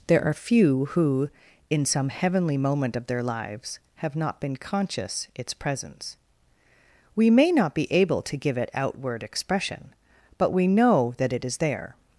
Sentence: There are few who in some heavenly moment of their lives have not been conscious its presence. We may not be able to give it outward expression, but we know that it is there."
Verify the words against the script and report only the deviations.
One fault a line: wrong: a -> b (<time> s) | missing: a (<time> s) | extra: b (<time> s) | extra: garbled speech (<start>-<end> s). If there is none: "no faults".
no faults